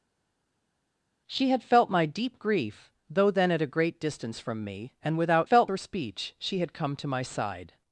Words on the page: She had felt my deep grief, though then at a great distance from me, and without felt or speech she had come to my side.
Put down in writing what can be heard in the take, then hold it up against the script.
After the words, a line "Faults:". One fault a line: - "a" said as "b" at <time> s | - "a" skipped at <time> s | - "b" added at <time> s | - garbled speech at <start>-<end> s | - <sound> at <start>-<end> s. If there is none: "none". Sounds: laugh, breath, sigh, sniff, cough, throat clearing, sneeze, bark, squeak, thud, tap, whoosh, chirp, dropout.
She had felt my deep grief, though then at a great distance from me, and without felt or speech she had come to my side.
Faults:
none